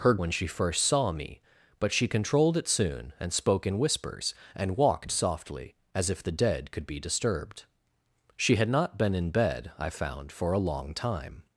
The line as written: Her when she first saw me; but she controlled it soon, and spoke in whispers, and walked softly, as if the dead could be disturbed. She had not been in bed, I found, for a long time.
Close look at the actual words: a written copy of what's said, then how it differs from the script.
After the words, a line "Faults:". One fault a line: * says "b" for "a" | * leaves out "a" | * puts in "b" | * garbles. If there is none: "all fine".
Her when she first saw me; but she controlled it soon, and spoke in whispers, and walked softly, as if the dead could be disturbed. She had not been in bed, I found, for a long time.
Faults:
all fine